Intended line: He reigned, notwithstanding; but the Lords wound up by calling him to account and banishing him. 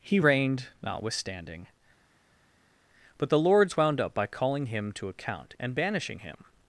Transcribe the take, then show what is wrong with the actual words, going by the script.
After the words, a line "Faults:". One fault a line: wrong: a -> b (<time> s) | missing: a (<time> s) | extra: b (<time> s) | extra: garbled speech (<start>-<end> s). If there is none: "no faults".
He reigned, notwithstanding; but the Lords wound up by calling him to account and banishing him.
Faults:
no faults